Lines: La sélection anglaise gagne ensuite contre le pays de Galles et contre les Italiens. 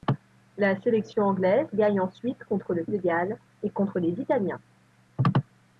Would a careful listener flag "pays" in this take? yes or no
yes